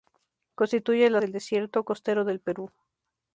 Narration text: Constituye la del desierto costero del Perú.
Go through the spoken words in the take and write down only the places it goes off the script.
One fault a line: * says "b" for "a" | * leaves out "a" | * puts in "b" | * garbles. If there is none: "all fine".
all fine